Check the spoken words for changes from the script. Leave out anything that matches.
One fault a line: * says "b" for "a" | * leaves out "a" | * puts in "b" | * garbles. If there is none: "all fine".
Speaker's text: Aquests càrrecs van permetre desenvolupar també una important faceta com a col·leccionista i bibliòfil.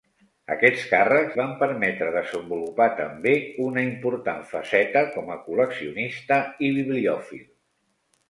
all fine